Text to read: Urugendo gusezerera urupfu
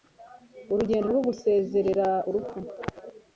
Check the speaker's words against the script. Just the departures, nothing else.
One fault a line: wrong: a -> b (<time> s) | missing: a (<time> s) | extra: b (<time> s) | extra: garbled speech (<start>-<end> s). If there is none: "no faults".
extra: rwo (1.1 s)